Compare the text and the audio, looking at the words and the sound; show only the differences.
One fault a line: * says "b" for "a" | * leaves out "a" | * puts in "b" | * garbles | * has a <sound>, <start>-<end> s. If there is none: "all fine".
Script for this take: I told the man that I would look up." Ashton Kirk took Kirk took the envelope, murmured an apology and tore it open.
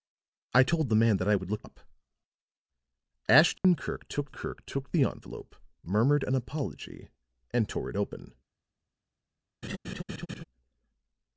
* has a dropout, 3.6-3.6 s
* has a laugh, 9.6-10.4 s